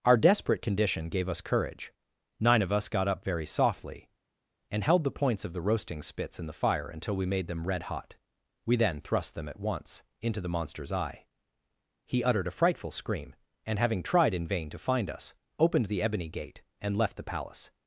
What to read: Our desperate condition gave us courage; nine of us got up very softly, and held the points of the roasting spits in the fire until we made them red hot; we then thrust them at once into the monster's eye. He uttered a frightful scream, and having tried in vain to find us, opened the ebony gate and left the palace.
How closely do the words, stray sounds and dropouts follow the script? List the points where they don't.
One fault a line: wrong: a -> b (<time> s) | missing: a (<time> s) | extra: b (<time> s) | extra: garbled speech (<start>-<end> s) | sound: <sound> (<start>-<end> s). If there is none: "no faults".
no faults